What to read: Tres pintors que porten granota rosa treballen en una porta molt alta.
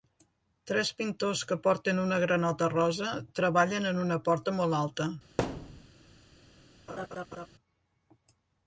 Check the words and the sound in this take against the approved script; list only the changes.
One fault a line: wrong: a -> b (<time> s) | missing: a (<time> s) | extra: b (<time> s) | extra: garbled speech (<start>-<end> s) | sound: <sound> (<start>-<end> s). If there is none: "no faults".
extra: una (2.1 s)
sound: thud (5.4-5.9 s)
sound: laugh (6.9-7.5 s)